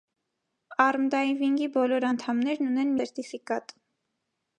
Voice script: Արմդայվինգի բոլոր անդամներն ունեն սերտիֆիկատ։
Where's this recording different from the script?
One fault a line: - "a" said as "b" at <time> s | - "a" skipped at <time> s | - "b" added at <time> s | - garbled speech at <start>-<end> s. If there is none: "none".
none